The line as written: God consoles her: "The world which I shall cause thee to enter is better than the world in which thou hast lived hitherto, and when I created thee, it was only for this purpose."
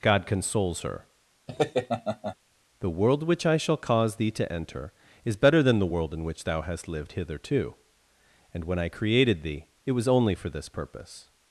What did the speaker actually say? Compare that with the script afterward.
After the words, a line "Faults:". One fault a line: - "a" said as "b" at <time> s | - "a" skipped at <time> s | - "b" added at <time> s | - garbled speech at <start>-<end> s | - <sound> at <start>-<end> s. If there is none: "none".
God consoles her: "The world which I shall cause thee to enter is better than the world in which thou hast lived hitherto, and when I created thee, it was only for this purpose."
Faults:
- laugh at 1.5-2.4 s